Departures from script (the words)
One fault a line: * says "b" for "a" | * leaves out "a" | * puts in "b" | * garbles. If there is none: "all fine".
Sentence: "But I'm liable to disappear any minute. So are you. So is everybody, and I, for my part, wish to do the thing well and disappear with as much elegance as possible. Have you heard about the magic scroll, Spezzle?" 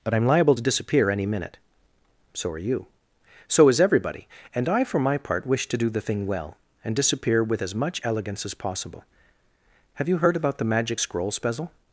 all fine